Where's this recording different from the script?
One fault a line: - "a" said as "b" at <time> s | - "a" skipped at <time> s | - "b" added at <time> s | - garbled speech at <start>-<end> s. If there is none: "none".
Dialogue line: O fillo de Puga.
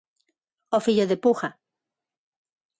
none